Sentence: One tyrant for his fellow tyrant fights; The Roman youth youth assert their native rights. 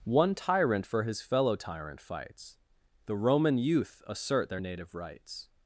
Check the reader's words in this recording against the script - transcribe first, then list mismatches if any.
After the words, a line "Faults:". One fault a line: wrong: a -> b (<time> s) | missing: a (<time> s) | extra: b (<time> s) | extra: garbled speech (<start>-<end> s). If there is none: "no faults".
One tyrant for his fellow tyrant fights; The Roman youth assert their native rights.
Faults:
missing: youth (4.0 s)